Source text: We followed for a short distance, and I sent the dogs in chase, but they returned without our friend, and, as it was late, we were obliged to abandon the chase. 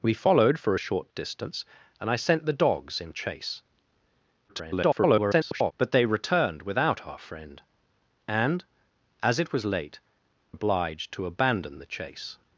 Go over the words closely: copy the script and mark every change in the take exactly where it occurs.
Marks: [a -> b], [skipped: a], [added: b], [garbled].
We followed for a short distance, and I sent the dogs in chase, [garbled] but they returned without our friend, and, as it was late, [skipped: we were] obliged to abandon the chase.